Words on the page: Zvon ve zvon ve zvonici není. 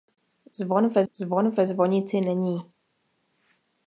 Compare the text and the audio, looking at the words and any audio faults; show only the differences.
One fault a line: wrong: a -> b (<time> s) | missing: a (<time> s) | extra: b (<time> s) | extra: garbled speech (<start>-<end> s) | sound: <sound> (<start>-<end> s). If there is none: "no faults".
no faults